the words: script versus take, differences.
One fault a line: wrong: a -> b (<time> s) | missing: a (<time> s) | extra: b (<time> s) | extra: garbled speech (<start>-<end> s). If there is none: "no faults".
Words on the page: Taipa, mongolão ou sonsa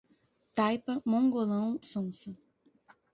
missing: ou (1.8 s)